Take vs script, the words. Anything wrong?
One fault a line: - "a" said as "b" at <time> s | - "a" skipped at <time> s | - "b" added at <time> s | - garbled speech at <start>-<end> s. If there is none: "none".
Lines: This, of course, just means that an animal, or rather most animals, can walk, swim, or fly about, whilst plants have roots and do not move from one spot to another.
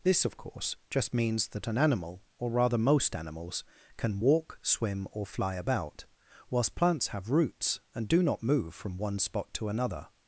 none